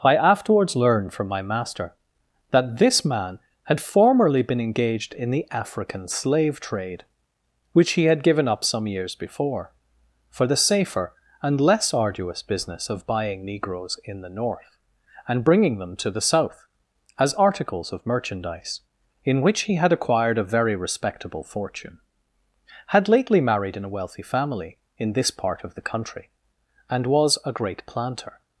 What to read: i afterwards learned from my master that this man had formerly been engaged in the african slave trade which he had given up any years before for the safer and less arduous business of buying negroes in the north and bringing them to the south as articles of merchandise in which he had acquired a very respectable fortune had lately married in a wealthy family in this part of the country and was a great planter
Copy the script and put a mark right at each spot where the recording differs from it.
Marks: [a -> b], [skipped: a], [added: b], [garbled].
i afterwards learned from my master that this man had formerly been engaged in the african slave trade which he had given up [any -> some] years before for the safer and less arduous business of buying negroes in the north and bringing them to the south as articles of merchandise in which he had acquired a very respectable fortune had lately married in a wealthy family in this part of the country and was a great planter